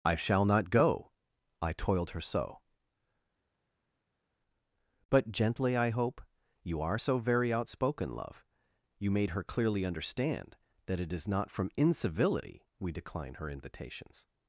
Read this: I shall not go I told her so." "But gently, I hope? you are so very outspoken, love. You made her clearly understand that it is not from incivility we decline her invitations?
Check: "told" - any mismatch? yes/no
yes